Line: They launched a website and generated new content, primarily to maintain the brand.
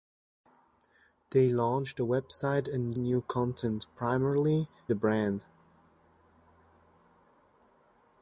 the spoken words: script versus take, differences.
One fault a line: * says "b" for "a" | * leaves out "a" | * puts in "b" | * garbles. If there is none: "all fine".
* leaves out "generated"
* leaves out "to maintain"